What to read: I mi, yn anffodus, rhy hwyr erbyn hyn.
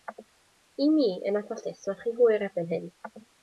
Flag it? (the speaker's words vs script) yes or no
yes